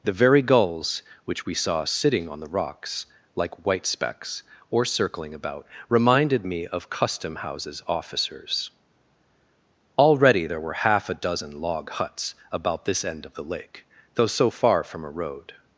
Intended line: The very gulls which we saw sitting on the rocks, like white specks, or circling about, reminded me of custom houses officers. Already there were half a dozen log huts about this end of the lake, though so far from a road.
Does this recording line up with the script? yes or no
yes